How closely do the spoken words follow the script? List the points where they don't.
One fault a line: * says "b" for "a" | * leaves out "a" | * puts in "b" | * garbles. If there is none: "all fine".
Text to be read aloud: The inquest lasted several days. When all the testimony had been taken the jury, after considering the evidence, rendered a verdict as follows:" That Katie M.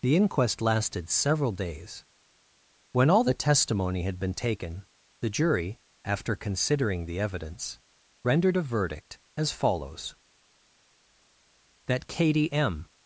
all fine